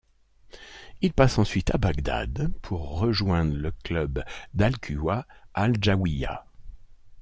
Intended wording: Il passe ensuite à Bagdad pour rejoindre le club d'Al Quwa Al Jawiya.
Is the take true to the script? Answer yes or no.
yes